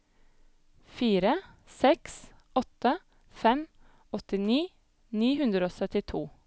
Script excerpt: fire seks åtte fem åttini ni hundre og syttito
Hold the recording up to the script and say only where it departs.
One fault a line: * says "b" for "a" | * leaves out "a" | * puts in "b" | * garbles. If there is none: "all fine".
all fine